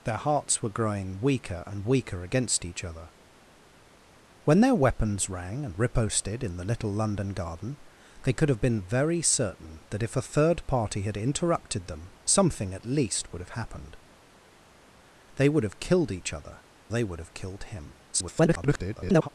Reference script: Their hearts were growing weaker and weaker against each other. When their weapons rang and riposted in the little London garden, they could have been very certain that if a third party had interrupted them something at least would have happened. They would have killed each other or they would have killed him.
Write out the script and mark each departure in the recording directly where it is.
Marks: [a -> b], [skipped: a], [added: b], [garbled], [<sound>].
Their hearts were growing weaker and weaker against each other. When their weapons rang and riposted in the little London garden, they could have been very certain that if a third party had interrupted them something at least would have happened. They would have killed each other [skipped: or] they would have killed him. [garbled]